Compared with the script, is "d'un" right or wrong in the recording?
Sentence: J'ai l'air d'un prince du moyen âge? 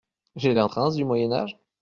wrong